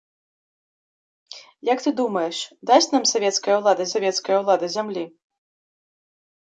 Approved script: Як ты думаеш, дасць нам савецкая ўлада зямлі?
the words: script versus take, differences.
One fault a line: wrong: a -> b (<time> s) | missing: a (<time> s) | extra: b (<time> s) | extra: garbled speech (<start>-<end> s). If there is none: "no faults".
extra: савецкая ўлада (3.9 s)